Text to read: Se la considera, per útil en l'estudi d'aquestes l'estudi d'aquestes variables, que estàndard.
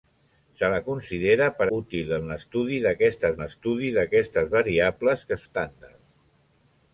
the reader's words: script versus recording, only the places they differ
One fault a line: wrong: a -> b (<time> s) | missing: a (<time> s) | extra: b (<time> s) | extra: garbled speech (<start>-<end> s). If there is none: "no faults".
no faults